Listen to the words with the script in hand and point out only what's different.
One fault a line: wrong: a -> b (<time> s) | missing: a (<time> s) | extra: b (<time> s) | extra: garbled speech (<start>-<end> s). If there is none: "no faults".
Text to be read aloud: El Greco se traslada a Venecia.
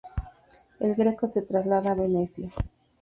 no faults